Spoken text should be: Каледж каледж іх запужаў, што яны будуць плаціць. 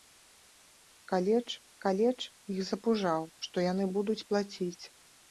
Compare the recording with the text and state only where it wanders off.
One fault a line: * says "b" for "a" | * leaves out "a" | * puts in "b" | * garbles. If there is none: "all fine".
all fine